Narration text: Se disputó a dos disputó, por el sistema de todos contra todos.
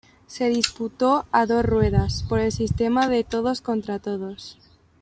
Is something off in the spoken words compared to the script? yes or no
yes